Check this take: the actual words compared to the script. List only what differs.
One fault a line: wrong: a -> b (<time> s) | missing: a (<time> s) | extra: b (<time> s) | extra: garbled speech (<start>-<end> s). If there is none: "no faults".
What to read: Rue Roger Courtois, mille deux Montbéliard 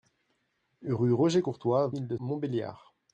no faults